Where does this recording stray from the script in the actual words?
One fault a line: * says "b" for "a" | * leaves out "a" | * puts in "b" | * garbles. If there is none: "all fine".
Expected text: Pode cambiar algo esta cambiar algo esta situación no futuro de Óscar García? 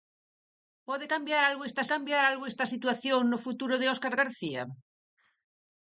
all fine